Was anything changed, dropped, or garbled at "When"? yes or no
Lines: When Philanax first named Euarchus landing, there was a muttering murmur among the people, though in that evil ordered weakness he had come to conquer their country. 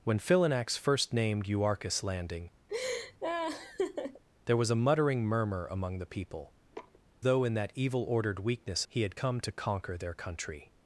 no